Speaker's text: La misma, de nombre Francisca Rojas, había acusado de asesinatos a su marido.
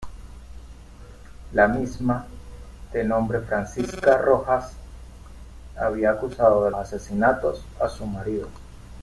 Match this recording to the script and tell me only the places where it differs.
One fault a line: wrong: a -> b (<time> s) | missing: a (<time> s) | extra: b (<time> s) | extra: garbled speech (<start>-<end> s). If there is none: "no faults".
no faults